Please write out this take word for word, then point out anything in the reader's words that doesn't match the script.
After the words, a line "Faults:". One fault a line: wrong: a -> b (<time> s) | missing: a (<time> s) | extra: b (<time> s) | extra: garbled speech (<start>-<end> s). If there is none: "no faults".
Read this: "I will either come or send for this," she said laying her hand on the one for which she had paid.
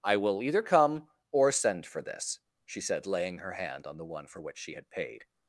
"I will either come or send for this," she said laying her hand on the one for which she had paid.
Faults:
no faults